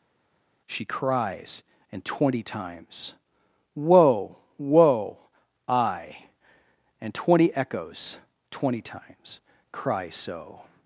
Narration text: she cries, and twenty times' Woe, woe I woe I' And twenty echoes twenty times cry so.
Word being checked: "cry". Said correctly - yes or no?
yes